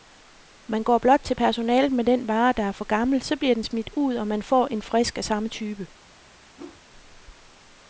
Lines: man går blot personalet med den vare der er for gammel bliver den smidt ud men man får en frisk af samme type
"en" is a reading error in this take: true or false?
false